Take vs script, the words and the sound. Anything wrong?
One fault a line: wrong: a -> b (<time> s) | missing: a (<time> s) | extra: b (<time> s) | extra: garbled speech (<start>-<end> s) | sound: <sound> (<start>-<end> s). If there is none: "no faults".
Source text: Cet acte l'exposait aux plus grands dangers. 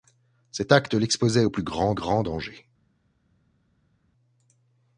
extra: grands (1.9 s)